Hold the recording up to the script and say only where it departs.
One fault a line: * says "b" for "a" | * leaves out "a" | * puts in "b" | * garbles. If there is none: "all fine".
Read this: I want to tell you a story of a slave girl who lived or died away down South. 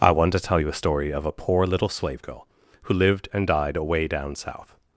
* puts in "poor little"
* says "and" for "or"